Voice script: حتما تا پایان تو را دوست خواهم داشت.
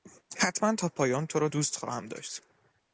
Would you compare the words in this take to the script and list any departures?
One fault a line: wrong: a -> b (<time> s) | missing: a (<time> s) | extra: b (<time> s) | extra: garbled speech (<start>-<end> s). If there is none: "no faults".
no faults